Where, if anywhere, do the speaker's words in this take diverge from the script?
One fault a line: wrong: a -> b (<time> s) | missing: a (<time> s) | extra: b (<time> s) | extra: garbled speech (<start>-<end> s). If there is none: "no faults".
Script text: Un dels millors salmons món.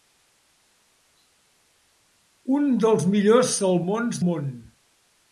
no faults